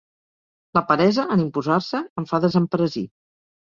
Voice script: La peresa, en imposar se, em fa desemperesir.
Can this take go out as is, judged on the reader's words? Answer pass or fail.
pass